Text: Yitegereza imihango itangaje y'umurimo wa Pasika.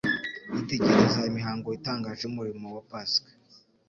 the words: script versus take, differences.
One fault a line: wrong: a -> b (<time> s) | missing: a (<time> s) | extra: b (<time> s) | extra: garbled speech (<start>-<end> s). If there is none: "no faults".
no faults